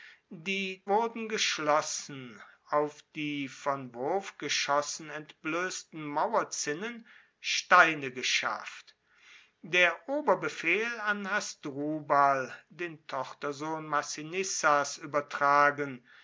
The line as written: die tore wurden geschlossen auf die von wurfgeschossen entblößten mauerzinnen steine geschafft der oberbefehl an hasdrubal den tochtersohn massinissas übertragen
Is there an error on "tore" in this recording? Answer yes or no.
yes